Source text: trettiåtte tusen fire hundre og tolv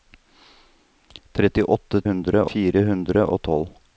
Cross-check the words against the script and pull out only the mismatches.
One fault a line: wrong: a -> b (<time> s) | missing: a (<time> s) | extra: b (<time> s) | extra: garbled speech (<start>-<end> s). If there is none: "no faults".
wrong: tusen -> hundre (2.1 s)